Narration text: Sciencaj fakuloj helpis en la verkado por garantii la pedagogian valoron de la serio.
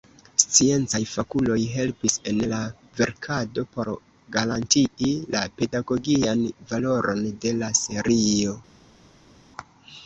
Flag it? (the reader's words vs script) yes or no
no